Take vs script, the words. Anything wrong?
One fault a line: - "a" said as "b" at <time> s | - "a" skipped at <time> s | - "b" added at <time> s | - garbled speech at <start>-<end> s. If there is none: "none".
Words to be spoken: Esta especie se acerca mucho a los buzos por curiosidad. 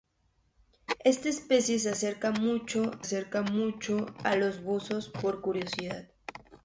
- "acerca mucho" added at 3.0 s